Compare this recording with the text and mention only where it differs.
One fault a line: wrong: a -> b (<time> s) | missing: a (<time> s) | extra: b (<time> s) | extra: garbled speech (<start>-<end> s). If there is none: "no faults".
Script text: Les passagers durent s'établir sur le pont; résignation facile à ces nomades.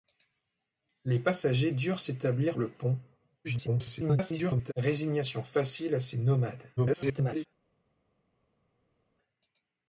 missing: sur (2.6 s)
extra: garbled speech (3.4-4.7 s)
extra: garbled speech (6.8-7.5 s)